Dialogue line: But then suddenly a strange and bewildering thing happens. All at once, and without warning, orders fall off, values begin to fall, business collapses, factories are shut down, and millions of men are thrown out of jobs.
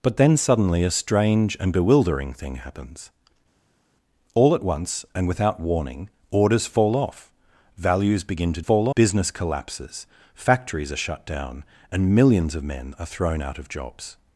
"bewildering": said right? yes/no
yes